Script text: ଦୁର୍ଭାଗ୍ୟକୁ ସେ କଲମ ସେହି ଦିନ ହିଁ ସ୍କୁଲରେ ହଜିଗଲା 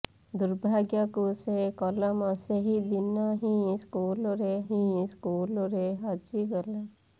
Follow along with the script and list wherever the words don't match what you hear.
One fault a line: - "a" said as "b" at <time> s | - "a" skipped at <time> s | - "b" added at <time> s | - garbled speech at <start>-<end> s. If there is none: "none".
- "ହିଁ ସ୍କୁଲରେ" added at 4.7 s